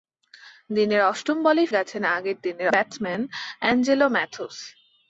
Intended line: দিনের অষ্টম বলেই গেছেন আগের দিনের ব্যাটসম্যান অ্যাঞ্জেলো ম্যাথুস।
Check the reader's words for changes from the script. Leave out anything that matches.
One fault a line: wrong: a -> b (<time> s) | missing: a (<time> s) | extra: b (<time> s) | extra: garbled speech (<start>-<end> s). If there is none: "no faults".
no faults